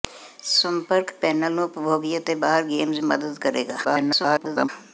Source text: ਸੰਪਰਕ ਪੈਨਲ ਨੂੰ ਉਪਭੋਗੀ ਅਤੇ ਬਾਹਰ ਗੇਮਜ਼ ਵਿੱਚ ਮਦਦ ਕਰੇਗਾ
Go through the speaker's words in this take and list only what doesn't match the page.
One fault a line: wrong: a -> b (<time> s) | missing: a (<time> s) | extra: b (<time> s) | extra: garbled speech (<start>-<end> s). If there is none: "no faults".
missing: ਵਿੱਚ (3.0 s)
extra: garbled speech (3.8-4.7 s)